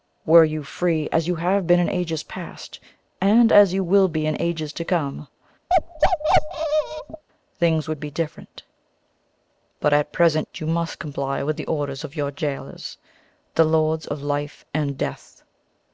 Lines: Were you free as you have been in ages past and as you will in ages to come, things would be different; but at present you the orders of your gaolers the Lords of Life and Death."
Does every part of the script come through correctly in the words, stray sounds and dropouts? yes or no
no